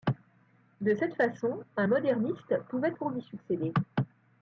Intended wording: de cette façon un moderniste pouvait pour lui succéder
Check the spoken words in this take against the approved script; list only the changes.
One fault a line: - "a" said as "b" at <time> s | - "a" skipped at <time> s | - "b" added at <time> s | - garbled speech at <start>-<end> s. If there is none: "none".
none